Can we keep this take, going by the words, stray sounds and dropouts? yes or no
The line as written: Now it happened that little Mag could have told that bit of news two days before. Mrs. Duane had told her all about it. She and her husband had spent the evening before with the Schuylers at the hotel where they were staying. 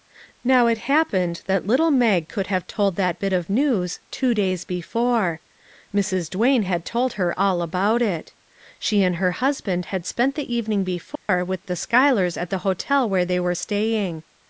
no